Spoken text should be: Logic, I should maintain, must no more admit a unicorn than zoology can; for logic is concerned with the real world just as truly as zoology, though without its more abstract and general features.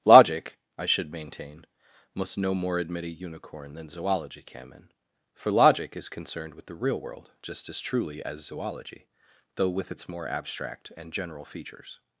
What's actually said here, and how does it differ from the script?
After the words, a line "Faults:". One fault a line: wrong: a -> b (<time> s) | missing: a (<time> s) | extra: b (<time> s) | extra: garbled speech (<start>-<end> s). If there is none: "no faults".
Logic, I should maintain, must no more admit a unicorn than zoology can; for logic is concerned with the real world just as truly as zoology, though with its more abstract and general features.
Faults:
wrong: without -> with (9.7 s)